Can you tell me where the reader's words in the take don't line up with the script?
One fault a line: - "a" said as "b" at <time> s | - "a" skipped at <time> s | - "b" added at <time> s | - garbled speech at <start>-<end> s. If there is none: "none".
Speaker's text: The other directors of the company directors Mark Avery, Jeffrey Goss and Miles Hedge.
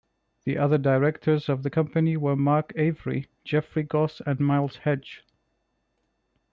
- "directors" said as "were" at 2.2 s